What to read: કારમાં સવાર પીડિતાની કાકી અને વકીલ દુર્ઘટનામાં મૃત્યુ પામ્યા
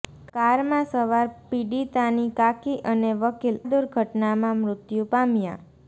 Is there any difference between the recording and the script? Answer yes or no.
no